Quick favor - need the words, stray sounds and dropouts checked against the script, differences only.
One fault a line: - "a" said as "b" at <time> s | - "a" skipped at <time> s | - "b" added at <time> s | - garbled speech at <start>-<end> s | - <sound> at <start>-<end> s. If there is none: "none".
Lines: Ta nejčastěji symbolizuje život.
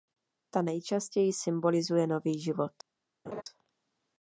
- "nový" added at 2.1 s
- laugh at 3.3-3.4 s